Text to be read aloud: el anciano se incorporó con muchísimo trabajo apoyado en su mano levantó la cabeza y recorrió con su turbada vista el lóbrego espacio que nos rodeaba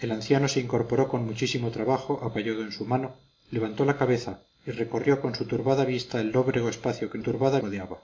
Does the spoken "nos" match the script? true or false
false